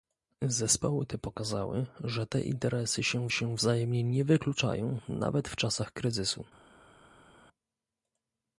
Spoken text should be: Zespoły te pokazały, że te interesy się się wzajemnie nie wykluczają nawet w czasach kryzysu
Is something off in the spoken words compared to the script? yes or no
no